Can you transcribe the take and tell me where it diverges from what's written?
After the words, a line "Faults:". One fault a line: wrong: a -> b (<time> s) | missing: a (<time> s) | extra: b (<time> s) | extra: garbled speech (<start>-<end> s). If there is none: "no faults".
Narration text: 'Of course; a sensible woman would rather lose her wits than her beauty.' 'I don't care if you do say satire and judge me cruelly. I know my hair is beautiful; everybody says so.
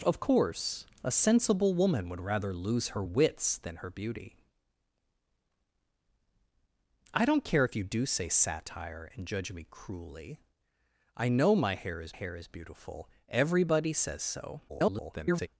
'Of course; a sensible woman would rather lose her wits than her beauty.' 'I don't care if you do say satire and judge me cruelly. I know my hair is hair is beautiful; everybody says so. [garbled]
Faults:
extra: hair is (12.1 s)
extra: garbled speech (14.7-15.5 s)